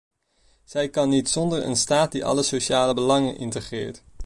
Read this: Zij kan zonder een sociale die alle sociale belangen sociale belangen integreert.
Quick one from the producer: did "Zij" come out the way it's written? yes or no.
yes